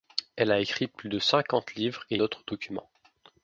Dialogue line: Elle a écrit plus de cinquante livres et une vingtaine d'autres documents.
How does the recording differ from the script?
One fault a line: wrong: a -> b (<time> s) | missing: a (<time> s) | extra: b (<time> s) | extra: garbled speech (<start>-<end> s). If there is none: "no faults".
missing: une vingtaine (2.1 s)